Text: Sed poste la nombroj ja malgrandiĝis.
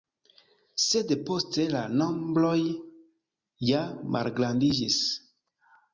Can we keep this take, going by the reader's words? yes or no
yes